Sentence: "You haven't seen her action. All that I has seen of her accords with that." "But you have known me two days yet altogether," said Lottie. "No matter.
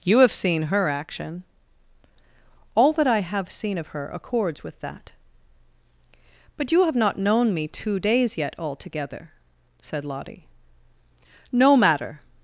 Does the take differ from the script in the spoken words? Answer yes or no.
yes